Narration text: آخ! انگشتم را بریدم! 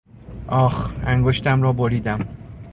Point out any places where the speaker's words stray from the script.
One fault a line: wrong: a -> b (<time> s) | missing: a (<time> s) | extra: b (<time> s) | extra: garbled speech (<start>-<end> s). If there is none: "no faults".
no faults